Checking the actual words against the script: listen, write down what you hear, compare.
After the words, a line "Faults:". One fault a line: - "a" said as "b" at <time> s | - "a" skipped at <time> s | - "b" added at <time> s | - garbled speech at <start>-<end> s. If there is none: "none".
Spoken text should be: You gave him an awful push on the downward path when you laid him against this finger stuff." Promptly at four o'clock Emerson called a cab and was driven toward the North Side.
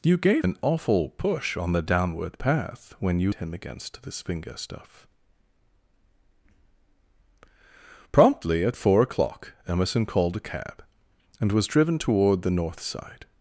You gave an awful push on the downward path when you him against this finger stuff." Promptly at four o'clock Emerson called a cab and was driven toward the North Side.
Faults:
- "him" skipped at 0.5 s
- "laid" skipped at 3.3 s